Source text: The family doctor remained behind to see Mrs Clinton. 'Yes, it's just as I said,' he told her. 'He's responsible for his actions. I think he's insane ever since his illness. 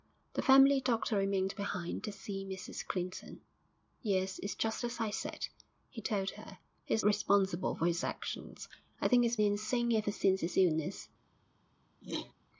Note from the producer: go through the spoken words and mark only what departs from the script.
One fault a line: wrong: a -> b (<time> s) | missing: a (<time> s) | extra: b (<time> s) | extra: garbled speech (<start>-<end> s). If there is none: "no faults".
no faults